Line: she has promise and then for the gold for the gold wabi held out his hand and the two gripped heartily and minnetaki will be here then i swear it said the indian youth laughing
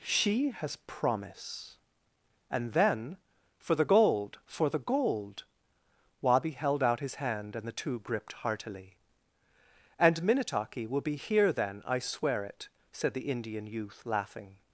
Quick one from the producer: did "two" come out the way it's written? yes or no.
yes